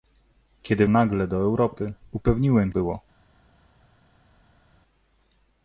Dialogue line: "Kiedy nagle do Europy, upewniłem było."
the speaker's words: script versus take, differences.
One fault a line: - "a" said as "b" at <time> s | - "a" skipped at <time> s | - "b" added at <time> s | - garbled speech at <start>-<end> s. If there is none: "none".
none